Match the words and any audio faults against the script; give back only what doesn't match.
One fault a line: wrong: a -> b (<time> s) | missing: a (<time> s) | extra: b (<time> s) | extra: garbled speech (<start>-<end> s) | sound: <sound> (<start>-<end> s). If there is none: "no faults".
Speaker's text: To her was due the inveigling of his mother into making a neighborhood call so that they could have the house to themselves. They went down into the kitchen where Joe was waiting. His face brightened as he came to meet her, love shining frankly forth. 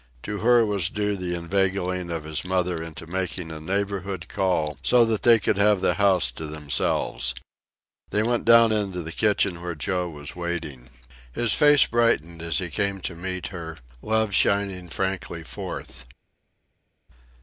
no faults